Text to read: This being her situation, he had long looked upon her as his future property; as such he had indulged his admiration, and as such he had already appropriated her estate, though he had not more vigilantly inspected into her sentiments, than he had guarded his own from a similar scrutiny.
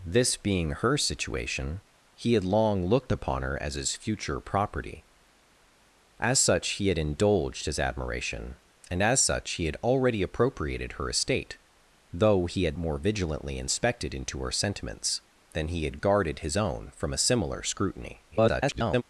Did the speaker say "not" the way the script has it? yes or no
no